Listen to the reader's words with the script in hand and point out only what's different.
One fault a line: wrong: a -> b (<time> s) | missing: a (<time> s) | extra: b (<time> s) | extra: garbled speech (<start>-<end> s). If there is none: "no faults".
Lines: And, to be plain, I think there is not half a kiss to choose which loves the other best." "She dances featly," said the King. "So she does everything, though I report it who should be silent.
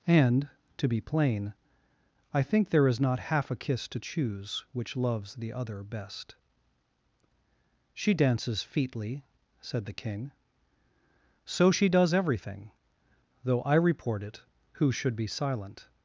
no faults